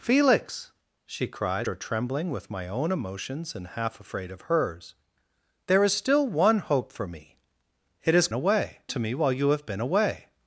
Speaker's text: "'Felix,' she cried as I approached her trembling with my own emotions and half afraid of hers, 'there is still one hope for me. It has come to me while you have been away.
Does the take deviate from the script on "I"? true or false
true